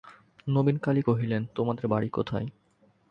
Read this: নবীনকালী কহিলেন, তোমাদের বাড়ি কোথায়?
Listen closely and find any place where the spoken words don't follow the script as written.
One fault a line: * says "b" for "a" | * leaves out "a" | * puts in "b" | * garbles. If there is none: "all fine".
all fine